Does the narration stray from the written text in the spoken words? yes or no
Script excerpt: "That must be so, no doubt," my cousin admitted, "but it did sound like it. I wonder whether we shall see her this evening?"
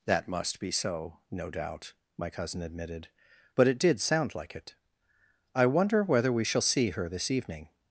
no